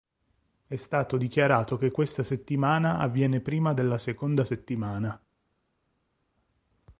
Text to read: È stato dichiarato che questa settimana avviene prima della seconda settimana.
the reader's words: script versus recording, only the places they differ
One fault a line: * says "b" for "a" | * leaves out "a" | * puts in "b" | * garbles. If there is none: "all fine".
all fine